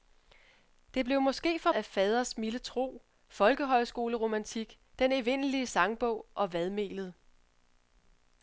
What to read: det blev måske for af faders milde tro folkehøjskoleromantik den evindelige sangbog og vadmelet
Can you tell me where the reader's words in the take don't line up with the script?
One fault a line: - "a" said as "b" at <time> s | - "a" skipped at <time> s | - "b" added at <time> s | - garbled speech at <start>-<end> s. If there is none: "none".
none